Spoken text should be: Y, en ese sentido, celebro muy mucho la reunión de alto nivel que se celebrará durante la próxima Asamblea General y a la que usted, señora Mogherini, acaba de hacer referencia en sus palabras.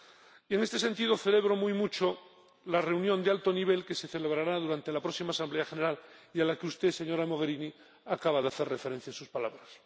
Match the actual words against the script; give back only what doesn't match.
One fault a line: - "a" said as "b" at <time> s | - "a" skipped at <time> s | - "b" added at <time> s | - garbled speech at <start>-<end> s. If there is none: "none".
- "ese" said as "este" at 0.6 s